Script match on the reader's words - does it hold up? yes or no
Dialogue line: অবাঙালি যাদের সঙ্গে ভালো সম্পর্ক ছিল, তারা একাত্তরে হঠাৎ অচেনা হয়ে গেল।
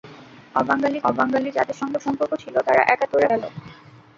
no